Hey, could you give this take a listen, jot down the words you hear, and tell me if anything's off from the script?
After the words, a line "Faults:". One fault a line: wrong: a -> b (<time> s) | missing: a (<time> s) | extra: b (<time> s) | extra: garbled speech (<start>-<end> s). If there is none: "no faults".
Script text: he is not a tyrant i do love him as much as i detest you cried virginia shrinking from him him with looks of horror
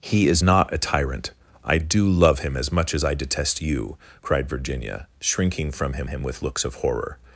he is not a tyrant i do love him as much as i detest you cried virginia shrinking from him him with looks of horror
Faults:
no faults